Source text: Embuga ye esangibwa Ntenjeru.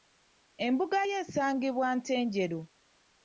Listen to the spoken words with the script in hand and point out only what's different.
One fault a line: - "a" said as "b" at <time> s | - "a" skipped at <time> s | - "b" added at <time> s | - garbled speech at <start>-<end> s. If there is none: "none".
none